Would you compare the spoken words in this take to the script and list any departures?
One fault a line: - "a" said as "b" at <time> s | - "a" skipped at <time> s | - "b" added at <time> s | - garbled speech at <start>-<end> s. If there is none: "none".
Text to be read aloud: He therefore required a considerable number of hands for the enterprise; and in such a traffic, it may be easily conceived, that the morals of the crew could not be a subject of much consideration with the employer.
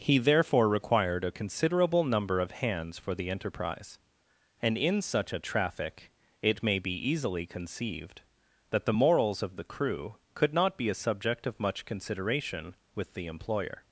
none